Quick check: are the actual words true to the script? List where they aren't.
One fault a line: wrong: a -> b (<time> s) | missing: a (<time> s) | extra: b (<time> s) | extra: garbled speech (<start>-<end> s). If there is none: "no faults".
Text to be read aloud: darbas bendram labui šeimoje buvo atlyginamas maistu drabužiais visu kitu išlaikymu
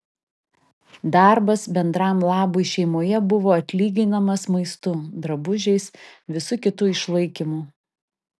no faults